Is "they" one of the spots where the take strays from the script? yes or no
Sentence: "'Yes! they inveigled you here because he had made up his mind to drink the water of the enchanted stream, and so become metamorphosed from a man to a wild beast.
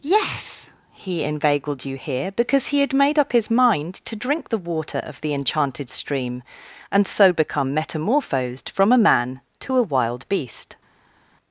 yes